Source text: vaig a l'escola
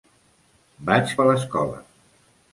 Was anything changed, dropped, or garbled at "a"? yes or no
no